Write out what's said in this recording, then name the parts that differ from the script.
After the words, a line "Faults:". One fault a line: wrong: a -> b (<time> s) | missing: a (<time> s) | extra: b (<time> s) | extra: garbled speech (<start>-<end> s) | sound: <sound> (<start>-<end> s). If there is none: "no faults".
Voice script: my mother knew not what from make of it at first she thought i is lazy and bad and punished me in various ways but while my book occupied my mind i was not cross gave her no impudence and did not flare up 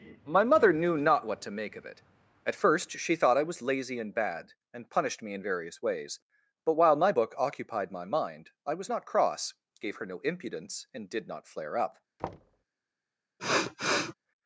my mother knew not what to make of it at first she thought i was lazy and bad and punished me in various ways but while my book occupied my mind i was not cross gave her no impudence and did not flare up
Faults:
wrong: from -> to (1.4 s)
wrong: is -> was (3.4 s)
sound: thud (12.2-12.6 s)
sound: sniff (13.4-14.1 s)